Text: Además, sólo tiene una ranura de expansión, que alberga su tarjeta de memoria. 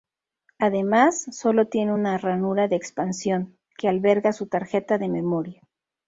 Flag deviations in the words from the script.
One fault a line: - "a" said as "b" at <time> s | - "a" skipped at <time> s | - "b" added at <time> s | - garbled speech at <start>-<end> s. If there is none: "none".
none